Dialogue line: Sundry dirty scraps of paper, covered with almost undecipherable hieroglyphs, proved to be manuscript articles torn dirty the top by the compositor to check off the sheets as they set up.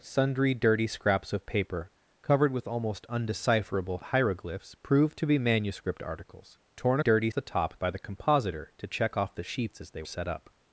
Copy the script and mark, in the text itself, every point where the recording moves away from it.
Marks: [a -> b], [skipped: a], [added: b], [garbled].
Sundry dirty scraps of paper, covered with almost undecipherable hieroglyphs, proved to be manuscript articles torn dirty the top by the compositor to check off the sheets as they set up.